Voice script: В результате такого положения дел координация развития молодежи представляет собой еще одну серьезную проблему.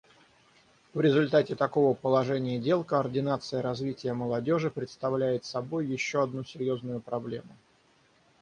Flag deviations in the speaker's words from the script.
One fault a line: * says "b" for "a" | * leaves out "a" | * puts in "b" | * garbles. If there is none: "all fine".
all fine